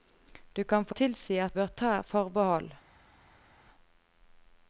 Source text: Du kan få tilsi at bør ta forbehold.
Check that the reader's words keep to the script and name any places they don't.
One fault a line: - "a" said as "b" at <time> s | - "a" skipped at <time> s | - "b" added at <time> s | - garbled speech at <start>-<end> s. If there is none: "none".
none